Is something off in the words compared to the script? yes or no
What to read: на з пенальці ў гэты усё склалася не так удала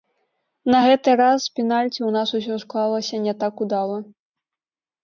yes